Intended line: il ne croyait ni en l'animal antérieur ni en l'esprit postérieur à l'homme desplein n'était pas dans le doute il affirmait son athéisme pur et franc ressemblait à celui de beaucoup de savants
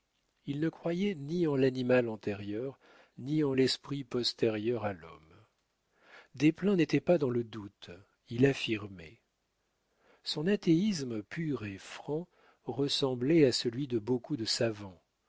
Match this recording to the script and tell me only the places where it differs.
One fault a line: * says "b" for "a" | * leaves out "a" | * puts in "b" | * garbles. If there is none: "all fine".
all fine